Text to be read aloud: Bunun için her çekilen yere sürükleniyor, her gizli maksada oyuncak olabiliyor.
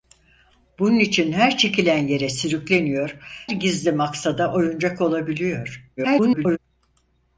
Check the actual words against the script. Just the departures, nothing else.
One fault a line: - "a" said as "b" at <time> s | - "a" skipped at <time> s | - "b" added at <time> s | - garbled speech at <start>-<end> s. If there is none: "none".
- "her" skipped at 3.2 s
- garbled speech at 6.0-6.6 s